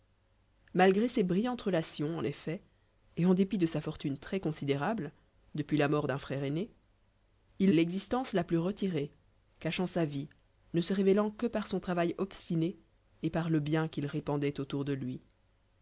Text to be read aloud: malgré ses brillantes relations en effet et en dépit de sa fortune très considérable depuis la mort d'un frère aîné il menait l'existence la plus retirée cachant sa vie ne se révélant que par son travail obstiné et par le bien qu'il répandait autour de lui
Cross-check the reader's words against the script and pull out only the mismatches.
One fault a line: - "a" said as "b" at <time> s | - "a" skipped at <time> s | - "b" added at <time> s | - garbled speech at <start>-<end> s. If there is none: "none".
- "menait" skipped at 7.7 s